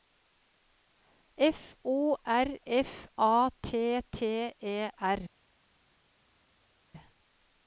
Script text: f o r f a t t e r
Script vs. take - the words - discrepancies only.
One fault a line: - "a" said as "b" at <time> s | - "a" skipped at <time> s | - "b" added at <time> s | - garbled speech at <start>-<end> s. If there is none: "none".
none